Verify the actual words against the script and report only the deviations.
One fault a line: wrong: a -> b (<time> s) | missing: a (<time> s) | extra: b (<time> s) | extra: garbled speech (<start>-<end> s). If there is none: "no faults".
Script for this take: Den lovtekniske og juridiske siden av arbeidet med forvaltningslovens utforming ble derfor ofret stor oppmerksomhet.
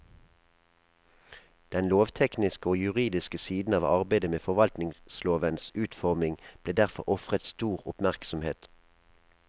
no faults